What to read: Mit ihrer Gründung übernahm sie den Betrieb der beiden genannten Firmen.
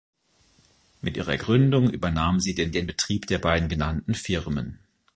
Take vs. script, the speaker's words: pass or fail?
fail